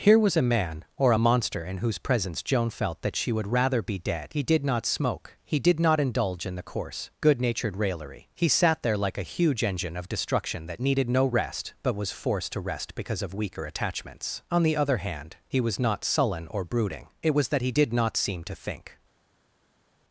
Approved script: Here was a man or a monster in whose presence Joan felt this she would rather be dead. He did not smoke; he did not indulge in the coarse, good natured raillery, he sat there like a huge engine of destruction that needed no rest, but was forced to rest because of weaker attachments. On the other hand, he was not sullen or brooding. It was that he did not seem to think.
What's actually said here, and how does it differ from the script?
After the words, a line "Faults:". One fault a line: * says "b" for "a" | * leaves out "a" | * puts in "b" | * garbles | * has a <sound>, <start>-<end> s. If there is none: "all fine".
Here was a man or a monster in whose presence Joan felt that she would rather be dead. He did not smoke; he did not indulge in the coarse, good natured raillery, he sat there like a huge engine of destruction that needed no rest, but was forced to rest because of weaker attachments. On the other hand, he was not sullen or brooding. It was that he did not seem to think.
Faults:
* says "that" for "this"